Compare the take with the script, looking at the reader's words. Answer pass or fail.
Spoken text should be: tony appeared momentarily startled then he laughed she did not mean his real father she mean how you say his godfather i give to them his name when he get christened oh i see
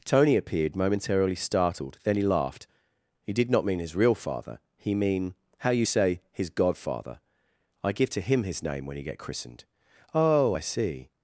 fail